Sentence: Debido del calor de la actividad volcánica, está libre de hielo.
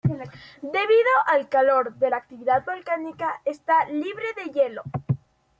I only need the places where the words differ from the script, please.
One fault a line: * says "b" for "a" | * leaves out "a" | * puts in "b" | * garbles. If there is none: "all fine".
* says "al" for "del"